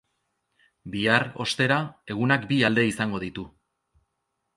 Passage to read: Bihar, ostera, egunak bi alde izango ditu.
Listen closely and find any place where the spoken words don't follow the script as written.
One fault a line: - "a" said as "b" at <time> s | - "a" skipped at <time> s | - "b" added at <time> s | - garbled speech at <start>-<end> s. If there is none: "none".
none